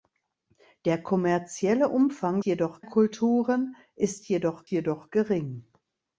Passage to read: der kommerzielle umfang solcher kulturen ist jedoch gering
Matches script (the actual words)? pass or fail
fail